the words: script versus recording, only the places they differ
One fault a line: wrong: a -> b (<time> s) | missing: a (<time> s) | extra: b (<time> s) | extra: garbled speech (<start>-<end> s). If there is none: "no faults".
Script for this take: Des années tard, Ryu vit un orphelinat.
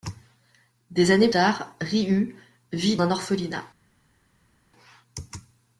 no faults